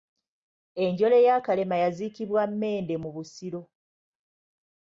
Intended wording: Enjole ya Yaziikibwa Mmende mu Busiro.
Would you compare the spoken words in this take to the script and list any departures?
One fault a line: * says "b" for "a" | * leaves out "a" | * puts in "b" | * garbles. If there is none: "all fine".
* puts in "Kalema"